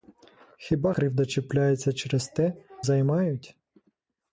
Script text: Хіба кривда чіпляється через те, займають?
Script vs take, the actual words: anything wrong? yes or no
no